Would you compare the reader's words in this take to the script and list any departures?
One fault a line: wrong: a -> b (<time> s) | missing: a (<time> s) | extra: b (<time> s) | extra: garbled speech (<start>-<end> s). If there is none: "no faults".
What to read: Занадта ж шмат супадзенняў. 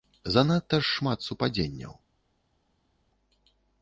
no faults